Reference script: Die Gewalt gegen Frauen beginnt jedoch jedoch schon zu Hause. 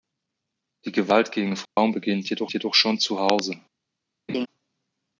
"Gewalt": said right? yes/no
yes